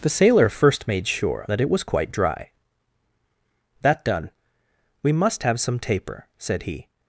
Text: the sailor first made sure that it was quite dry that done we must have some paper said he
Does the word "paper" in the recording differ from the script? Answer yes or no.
yes